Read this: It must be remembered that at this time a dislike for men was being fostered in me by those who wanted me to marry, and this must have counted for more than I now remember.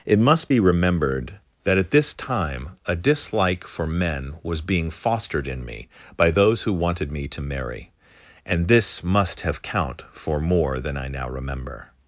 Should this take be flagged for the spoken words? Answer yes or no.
yes